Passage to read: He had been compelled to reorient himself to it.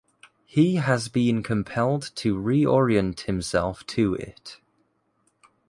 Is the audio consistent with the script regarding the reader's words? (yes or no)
no